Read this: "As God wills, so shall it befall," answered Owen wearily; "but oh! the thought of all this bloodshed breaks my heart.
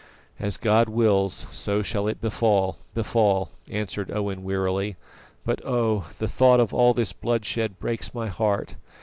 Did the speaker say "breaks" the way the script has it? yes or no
yes